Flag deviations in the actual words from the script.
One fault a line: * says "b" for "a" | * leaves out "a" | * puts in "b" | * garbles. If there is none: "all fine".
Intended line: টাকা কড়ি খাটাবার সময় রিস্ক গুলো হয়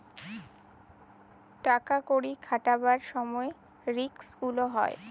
all fine